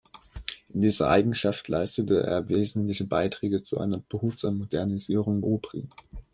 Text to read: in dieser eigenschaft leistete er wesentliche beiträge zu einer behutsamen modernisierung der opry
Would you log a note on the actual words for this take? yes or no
yes